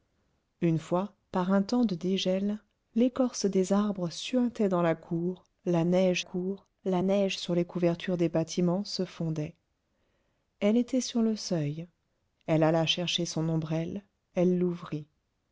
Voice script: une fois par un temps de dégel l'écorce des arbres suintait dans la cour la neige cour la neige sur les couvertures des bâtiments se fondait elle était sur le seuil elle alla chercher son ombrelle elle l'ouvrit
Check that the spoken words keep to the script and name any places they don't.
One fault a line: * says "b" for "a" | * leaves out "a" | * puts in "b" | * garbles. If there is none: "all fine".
all fine